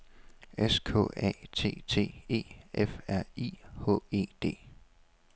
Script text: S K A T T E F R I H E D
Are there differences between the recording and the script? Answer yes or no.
no